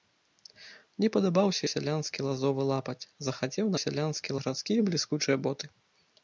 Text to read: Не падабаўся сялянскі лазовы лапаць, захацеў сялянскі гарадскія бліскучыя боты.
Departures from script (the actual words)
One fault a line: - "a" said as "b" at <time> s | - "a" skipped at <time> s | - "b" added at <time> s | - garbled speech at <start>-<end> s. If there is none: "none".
none